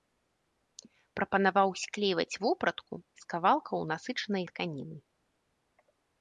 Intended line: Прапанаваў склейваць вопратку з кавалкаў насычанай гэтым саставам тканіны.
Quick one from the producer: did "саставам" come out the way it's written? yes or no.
no